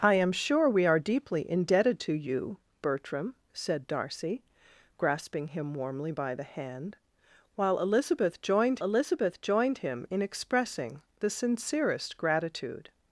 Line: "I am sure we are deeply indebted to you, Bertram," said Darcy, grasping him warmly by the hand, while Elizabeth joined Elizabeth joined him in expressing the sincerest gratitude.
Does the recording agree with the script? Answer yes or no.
yes